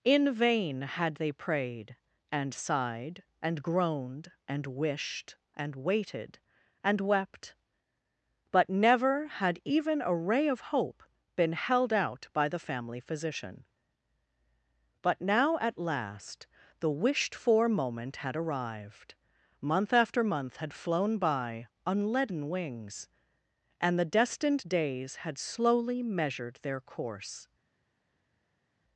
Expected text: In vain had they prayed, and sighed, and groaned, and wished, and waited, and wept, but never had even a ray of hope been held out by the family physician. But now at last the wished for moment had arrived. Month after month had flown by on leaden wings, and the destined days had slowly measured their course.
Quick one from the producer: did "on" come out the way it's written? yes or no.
yes